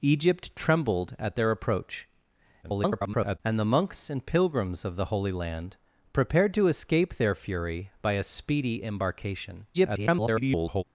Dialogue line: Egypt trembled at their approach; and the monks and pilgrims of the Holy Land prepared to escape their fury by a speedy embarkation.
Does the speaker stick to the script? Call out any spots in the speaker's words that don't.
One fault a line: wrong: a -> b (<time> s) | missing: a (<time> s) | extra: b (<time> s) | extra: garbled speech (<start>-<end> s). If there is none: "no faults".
extra: garbled speech (2.6-3.4 s)
extra: garbled speech (9.7-10.8 s)